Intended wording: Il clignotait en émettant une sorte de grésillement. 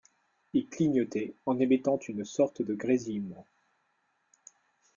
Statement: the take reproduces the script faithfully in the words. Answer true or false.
true